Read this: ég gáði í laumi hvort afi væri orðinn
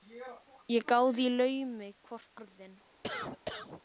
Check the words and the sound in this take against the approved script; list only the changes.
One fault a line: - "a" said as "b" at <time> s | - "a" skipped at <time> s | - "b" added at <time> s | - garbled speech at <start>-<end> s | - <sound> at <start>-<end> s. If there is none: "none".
- "afi væri" skipped at 2.3 s
- cough at 3.0-3.8 s